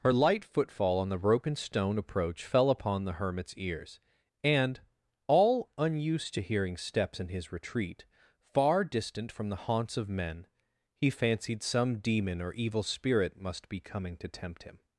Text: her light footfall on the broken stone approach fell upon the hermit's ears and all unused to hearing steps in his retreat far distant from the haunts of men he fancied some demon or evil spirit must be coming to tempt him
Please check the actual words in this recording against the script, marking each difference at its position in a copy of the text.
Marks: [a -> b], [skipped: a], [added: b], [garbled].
her light footfall on the broken stone approach fell upon the hermit's ears and all unused to hearing steps in his retreat far distant from the haunts of men he fancied some demon or evil spirit must be coming to tempt him